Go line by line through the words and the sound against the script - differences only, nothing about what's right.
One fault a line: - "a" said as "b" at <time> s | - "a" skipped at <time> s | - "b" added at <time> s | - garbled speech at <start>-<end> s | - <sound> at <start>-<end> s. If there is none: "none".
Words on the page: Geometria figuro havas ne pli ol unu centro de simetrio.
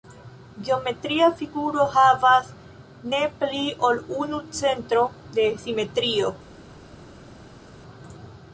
none